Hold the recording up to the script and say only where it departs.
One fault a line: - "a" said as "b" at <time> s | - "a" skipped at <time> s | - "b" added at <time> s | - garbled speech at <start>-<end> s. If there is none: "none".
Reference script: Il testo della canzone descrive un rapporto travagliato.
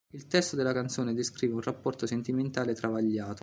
- "sentimentale" added at 2.1 s